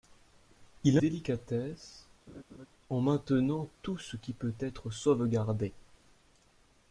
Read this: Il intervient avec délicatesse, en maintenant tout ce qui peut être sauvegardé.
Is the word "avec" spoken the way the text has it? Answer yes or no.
no